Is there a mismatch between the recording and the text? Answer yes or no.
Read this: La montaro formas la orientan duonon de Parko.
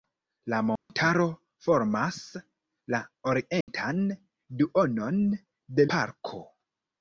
no